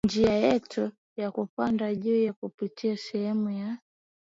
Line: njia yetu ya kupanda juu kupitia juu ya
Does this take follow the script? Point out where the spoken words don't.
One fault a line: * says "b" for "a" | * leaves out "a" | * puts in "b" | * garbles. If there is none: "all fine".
* says "sehemu" for "juu"